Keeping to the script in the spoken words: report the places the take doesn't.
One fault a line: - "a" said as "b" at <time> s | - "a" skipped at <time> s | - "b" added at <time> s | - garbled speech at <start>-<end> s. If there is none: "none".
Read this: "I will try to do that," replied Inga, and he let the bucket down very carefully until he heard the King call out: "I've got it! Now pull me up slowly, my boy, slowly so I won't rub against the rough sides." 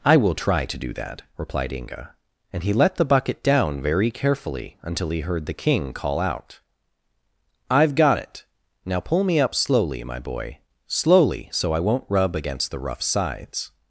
none